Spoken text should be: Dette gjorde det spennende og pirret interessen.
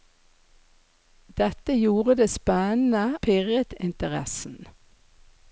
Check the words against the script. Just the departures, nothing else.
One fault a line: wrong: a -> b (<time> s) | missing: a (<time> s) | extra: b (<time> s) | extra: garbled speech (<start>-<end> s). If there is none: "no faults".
missing: og (3.0 s)